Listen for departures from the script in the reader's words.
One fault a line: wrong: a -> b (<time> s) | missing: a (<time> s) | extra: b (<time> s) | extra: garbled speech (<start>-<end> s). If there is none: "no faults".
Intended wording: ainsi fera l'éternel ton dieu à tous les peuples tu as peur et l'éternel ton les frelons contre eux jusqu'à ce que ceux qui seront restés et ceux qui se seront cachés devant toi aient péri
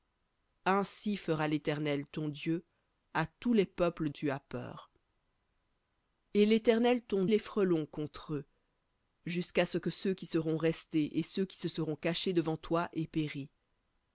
no faults